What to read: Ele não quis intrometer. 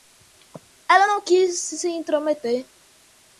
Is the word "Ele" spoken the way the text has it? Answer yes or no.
no